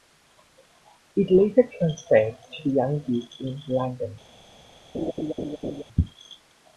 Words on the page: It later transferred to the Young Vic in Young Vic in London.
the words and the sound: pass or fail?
fail